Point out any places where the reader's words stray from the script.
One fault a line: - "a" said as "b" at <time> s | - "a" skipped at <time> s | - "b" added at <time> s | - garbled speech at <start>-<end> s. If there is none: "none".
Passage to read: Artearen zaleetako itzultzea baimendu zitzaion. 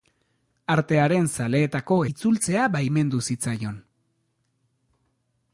none